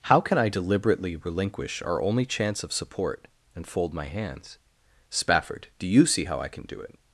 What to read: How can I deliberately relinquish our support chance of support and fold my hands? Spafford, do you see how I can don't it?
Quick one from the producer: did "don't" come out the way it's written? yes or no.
no